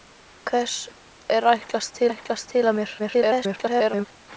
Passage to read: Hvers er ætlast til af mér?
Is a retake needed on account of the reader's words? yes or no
yes